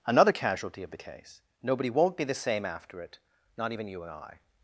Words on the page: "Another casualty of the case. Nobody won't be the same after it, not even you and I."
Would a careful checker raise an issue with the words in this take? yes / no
no